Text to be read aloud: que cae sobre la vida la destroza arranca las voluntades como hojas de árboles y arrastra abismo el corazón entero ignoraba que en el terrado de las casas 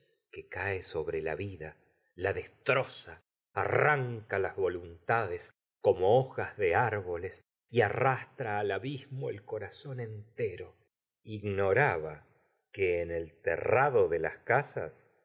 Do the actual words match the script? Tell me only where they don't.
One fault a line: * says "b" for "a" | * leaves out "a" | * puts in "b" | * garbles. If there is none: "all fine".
* puts in "al"